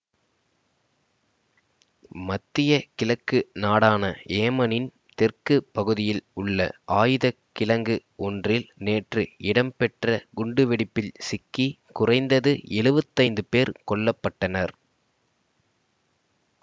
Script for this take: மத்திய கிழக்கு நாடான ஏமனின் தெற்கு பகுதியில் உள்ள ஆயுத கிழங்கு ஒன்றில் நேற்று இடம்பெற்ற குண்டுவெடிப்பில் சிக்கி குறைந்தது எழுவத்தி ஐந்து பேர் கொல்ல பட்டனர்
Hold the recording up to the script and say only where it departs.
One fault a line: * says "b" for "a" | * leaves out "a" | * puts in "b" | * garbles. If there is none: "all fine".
all fine